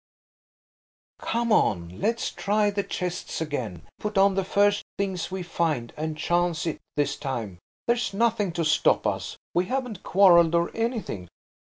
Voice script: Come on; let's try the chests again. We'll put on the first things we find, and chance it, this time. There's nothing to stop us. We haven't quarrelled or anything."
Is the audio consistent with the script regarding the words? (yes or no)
no